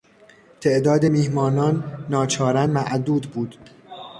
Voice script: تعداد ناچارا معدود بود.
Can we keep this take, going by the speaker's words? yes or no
no